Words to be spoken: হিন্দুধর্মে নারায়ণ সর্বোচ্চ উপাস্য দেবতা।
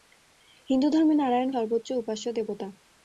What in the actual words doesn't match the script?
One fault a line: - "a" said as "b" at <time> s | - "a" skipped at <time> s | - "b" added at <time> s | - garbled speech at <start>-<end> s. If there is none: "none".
none